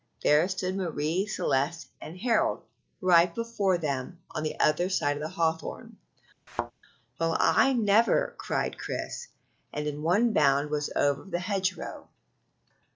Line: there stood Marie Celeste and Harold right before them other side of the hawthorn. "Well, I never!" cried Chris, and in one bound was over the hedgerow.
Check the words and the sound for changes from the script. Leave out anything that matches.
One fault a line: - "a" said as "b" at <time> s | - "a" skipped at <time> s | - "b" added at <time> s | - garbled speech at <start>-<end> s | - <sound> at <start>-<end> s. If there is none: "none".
- "on the" added at 4.3 s
- thud at 6.5-6.7 s